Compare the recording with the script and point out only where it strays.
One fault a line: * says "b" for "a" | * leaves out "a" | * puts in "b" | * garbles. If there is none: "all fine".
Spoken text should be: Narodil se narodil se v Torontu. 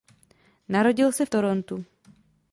* leaves out "narodil se"